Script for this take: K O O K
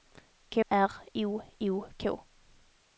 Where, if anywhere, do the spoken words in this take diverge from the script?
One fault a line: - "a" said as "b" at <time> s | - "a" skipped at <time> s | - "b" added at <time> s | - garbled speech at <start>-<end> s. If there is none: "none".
none